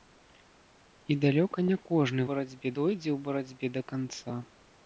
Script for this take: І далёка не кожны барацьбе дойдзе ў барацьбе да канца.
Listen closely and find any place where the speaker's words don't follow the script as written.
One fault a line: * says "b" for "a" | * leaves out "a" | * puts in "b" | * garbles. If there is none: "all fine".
all fine